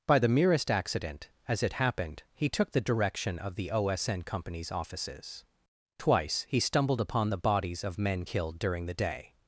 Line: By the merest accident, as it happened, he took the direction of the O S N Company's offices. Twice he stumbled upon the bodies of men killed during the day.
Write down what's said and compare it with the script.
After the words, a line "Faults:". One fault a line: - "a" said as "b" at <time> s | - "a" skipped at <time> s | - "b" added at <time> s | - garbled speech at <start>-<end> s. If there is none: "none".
By the merest accident, as it happened, he took the direction of the O S N Company's offices. Twice he stumbled upon the bodies of men killed during the day.
Faults:
none